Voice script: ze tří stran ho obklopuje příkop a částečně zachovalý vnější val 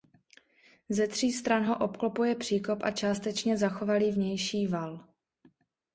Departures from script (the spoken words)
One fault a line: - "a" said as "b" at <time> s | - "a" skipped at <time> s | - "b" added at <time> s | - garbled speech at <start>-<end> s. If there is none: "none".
none